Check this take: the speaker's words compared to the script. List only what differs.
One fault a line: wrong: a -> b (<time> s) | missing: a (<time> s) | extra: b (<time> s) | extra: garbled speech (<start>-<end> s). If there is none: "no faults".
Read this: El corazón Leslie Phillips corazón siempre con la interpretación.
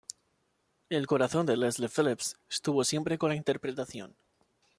extra: de (1.4 s)
wrong: corazón -> estuvo (2.5 s)